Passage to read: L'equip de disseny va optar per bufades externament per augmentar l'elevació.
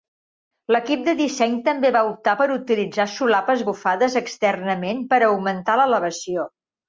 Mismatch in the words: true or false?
true